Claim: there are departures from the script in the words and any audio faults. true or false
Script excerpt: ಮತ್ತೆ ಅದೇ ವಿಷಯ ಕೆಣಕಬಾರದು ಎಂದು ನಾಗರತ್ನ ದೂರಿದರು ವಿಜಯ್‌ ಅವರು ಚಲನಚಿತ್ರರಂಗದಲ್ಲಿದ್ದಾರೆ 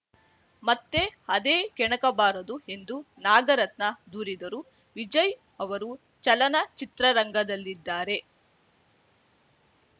true